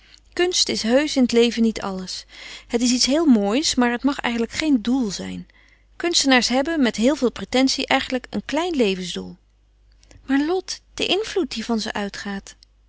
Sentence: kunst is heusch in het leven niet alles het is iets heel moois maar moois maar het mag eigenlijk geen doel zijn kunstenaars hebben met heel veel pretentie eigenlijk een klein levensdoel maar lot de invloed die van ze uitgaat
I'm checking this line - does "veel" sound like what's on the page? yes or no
yes